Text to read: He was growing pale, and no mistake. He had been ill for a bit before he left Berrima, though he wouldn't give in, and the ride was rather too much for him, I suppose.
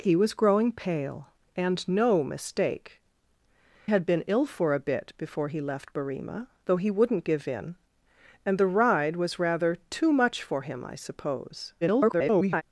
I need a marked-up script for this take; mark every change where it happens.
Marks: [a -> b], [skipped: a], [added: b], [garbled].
He was growing pale, and no mistake. [skipped: He] had been ill for a bit before he left Berrima, though he wouldn't give in, and the ride was rather too much for him, I suppose. [garbled]